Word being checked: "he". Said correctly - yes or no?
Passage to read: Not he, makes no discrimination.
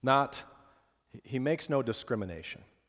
yes